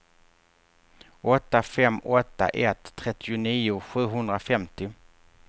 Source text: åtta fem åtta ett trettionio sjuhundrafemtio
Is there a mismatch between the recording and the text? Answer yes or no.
no